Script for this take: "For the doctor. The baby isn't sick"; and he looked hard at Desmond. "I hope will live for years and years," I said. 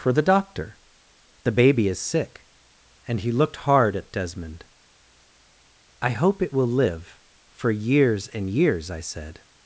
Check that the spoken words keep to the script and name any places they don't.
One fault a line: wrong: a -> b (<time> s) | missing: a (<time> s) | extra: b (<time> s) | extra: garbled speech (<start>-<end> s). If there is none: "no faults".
wrong: isn't -> is (1.9 s)
extra: it (6.4 s)